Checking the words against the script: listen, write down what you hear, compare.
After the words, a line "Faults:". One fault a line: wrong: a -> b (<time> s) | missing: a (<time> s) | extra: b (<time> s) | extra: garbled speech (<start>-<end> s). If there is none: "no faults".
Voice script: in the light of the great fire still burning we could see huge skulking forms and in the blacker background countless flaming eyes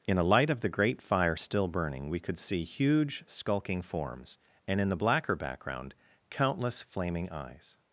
in a light of the great fire still burning we could see huge skulking forms and in the blacker background countless flaming eyes
Faults:
wrong: the -> a (0.2 s)